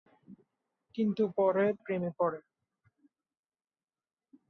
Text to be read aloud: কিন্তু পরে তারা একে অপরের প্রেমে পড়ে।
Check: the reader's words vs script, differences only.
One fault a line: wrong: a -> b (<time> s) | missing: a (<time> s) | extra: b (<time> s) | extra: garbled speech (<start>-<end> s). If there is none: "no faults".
missing: তারা একে অপরের (1.6 s)